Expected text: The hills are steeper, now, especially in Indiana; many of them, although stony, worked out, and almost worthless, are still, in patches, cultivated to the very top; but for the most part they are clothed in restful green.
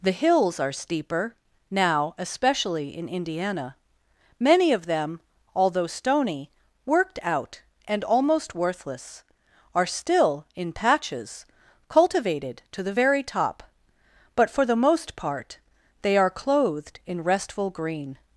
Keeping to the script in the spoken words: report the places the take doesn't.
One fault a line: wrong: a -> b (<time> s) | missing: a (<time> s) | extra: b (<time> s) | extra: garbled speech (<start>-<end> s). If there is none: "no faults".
no faults